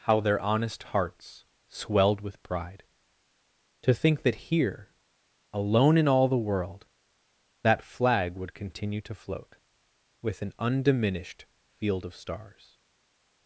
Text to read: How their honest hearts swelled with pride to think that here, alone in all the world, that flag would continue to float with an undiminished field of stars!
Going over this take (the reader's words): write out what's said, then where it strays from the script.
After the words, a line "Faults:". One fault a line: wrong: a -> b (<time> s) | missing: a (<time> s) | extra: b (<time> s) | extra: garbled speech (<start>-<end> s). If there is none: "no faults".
How their honest hearts swelled with pride to think that here, alone in all the world, that flag would continue to float with an undiminished field of stars!
Faults:
no faults